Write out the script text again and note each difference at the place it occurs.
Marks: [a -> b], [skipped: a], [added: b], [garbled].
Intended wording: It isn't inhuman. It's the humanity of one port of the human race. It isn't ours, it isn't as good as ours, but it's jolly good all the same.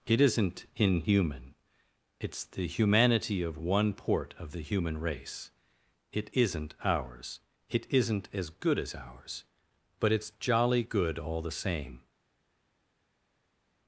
It isn't inhuman. It's the humanity of one port of the human race. It isn't ours, it isn't as good as ours, but it's jolly good all the same.